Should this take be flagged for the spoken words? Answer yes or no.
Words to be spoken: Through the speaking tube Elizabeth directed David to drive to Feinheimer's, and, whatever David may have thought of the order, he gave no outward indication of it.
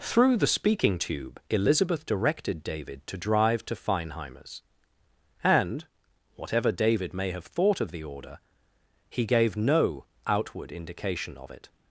no